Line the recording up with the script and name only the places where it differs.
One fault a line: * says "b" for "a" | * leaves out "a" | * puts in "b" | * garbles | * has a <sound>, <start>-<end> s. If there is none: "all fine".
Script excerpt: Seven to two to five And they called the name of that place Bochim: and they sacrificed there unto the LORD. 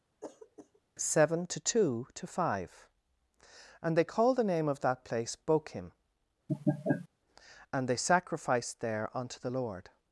* has a throat clearing, 0.2-0.8 s
* has a laugh, 6.5-7.1 s